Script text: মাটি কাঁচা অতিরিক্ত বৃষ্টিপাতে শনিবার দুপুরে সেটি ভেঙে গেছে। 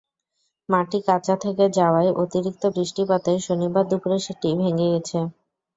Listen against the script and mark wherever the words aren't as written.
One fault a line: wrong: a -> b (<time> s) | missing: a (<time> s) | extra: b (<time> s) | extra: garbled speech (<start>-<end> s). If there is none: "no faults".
extra: থেকে যাওয়ায় (1.4 s)